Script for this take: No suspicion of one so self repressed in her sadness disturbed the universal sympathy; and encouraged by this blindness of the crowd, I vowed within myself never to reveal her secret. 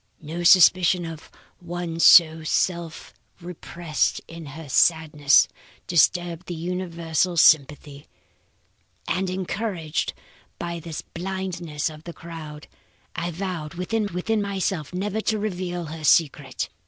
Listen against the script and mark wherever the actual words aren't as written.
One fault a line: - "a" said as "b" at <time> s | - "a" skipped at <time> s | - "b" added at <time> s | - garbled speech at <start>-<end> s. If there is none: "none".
- "within" added at 14.1 s